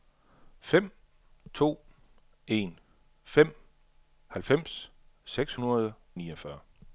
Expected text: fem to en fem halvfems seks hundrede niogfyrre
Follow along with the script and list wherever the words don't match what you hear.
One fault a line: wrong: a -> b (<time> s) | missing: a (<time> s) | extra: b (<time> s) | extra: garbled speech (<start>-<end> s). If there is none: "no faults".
no faults